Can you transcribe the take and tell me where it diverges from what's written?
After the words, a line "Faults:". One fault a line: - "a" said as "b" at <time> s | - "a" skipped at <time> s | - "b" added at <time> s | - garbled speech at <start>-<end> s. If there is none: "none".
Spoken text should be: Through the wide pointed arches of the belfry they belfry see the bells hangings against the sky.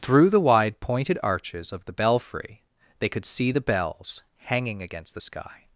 Through the wide pointed arches of the belfry they could see the bells hanging against the sky.
Faults:
- "belfry" said as "could" at 3.1 s
- "hangings" said as "hanging" at 4.4 s